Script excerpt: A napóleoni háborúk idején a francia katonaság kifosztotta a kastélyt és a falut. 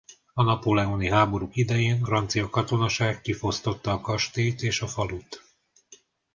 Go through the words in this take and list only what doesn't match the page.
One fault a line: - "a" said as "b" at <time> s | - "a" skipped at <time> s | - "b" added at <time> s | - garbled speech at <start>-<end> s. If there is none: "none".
- "a" skipped at 2.0 s